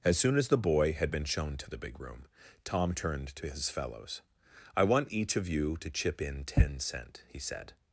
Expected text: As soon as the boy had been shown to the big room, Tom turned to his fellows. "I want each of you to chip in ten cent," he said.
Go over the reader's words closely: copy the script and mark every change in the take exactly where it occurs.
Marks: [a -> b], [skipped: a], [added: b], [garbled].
As soon as the boy had been shown to the big room, Tom turned to his fellows. "I want each of you to chip in ten cent," he said.